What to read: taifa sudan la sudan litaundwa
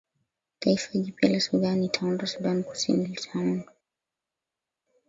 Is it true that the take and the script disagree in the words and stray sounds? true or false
true